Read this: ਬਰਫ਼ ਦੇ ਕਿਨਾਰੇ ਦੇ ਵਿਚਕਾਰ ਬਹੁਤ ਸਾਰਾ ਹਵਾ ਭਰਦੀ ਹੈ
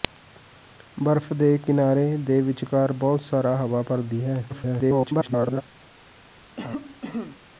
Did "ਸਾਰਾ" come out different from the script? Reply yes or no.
no